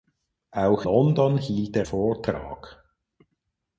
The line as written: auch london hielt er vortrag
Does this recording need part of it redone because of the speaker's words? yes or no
no